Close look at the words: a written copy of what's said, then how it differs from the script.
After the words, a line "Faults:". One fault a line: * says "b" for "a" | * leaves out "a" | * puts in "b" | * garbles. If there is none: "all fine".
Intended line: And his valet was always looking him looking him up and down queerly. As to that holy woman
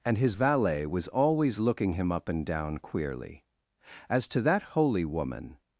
And his valet was always looking him up and down queerly. As to that holy woman
Faults:
* leaves out "looking him"